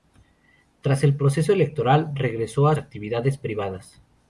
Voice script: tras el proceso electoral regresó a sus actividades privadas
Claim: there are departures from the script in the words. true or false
true